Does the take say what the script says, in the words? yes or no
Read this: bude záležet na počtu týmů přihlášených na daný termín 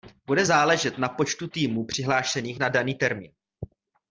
yes